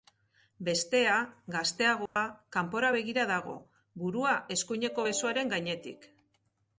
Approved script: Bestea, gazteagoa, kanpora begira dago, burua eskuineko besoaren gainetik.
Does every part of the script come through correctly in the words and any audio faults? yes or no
no